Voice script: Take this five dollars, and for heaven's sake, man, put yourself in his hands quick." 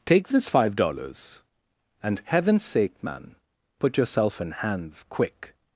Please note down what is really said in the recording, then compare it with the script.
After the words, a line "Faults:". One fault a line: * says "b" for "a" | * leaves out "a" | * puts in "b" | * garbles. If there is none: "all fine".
Take this five dollars, and heaven's sake, man, put yourself in hands quick."
Faults:
* leaves out "for"
* leaves out "his"